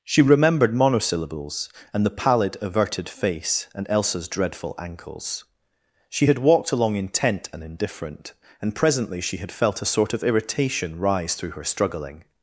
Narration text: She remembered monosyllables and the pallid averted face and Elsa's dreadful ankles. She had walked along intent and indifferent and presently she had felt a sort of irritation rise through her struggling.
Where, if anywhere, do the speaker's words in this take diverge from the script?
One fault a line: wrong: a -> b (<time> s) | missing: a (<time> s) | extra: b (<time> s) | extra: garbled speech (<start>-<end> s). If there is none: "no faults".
no faults